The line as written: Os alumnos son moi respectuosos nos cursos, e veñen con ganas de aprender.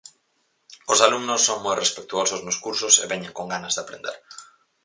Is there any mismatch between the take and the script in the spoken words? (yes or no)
no